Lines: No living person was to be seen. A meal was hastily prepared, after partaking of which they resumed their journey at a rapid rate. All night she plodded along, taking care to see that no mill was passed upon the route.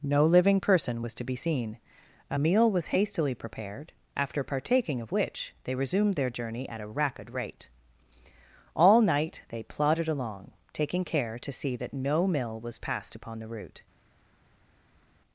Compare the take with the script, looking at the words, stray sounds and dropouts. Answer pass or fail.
fail